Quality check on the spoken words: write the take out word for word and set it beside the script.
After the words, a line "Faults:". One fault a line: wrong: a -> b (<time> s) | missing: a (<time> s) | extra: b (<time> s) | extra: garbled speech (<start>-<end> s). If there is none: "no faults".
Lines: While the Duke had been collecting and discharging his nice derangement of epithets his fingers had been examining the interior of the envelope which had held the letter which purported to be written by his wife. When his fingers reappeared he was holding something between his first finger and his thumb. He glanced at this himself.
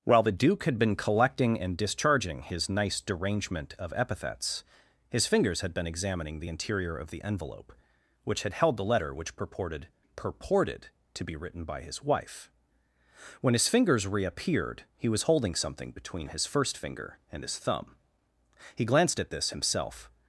While the Duke had been collecting and discharging his nice derangement of epithets his fingers had been examining the interior of the envelope which had held the letter which purported purported to be written by his wife. When his fingers reappeared he was holding something between his first finger and his thumb. He glanced at this himself.
Faults:
extra: purported (10.2 s)